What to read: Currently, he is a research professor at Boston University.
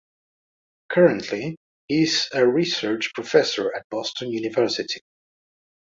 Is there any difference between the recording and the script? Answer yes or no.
no